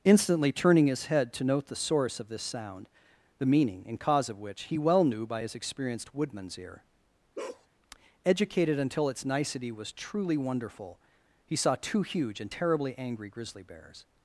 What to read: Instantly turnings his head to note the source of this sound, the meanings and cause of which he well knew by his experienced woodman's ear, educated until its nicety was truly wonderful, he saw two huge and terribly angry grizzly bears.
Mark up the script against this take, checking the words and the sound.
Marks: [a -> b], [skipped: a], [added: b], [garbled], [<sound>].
Instantly [turnings -> turning] his head to note the source of this sound, the [meanings -> meaning] and cause of which he well knew by his experienced woodman's ear, [bark] educated until its nicety was truly wonderful, he saw two huge and terribly angry grizzly bears.